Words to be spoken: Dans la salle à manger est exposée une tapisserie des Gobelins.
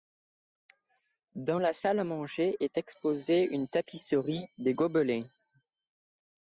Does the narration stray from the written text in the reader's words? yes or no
no